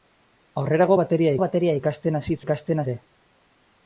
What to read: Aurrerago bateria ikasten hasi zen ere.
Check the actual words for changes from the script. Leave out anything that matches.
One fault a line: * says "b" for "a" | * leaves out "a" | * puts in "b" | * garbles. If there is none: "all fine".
* puts in "bateria"
* says "ikasten" for "zen"